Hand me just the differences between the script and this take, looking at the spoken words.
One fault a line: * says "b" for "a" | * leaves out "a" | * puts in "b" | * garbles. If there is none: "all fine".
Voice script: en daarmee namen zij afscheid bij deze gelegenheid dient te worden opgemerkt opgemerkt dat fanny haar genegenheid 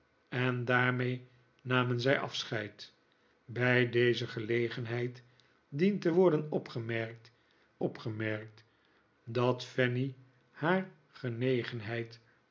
all fine